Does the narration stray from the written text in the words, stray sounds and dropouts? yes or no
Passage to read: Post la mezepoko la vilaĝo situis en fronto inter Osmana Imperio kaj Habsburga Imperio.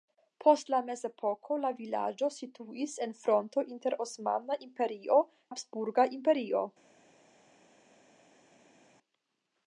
yes